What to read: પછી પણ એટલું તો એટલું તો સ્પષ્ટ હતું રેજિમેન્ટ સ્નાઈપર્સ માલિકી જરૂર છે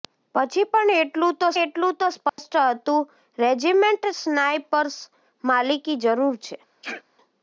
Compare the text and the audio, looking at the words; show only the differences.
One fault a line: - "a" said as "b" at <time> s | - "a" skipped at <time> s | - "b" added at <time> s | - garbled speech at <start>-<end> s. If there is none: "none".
none